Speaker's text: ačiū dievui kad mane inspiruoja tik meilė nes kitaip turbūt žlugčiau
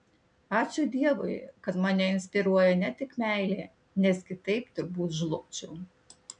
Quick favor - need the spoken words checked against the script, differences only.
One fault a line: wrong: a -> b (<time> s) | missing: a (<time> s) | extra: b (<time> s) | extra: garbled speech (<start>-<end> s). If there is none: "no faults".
extra: ne (2.8 s)